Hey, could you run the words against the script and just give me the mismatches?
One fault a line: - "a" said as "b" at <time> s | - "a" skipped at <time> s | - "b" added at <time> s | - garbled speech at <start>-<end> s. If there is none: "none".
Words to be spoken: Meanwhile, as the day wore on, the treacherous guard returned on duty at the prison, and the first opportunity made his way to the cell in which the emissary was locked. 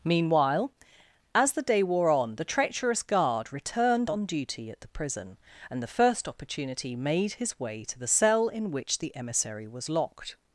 none